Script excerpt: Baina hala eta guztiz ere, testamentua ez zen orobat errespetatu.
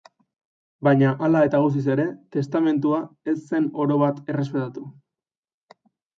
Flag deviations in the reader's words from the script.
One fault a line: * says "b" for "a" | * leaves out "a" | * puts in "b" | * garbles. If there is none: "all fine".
all fine